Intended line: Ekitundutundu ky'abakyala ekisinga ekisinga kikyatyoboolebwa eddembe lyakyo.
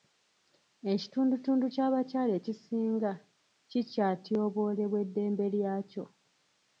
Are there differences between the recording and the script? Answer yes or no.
yes